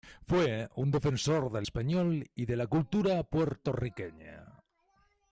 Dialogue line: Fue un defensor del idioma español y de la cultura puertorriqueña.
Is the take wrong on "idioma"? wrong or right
wrong